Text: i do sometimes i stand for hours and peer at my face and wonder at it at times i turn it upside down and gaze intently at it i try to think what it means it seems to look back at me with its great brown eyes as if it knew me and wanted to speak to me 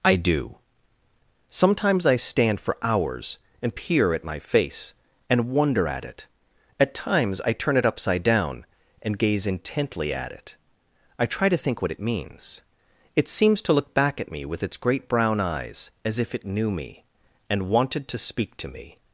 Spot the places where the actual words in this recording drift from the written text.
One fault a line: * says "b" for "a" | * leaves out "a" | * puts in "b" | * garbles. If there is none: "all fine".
all fine